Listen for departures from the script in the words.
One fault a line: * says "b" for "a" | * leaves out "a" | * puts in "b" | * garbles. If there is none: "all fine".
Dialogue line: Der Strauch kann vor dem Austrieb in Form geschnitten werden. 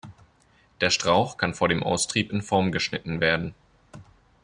all fine